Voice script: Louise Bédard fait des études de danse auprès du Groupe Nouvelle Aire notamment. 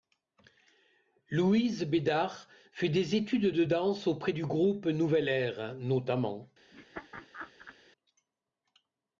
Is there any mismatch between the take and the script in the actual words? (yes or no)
no